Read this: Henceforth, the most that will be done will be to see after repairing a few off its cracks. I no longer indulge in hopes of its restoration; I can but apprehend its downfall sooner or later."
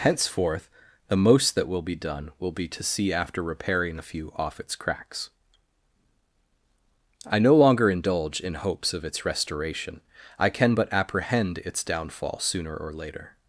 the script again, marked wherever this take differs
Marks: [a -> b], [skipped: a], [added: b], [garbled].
Henceforth, the most that will be done will be to see after repairing a few off its cracks. I no longer indulge in hopes of its restoration; I can but apprehend its downfall sooner or later."